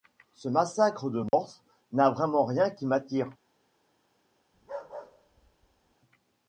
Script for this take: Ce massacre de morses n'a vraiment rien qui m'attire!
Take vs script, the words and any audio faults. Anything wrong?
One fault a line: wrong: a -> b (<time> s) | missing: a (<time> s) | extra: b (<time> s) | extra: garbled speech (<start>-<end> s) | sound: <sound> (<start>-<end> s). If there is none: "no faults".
sound: dropout (1.3-1.3 s)
sound: bark (4.5-6.0 s)